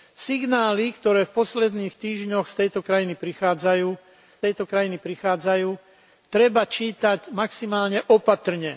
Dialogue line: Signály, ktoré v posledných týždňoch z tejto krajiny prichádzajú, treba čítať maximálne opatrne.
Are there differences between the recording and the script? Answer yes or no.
yes